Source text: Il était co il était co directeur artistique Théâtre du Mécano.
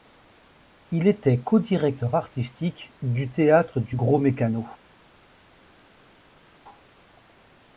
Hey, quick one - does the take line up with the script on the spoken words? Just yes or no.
no